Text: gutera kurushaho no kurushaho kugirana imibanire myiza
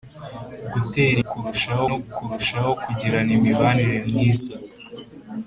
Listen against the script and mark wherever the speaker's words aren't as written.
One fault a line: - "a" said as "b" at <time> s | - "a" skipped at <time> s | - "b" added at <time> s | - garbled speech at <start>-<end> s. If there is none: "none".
none